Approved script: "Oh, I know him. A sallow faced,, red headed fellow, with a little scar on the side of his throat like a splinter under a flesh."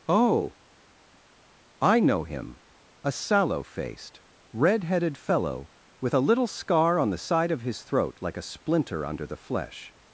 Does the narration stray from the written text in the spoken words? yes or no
yes